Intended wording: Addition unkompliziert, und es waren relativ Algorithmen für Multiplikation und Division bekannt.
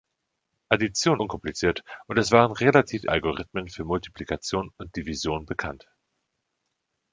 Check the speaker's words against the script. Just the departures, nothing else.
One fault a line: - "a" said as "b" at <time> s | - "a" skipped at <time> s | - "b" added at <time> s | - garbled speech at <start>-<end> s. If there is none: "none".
none